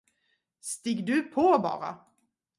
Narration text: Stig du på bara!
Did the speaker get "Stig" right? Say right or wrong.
right